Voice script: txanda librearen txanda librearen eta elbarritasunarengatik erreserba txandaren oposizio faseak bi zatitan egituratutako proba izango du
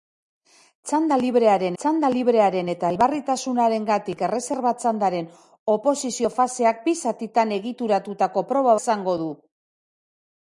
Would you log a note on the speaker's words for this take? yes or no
no